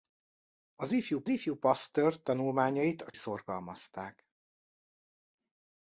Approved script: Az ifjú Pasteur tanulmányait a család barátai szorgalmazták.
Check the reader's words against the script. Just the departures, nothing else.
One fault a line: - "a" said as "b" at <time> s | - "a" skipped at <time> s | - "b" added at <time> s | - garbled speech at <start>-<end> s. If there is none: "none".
- "ifjú" added at 1.3 s
- "család barátai" skipped at 3.1 s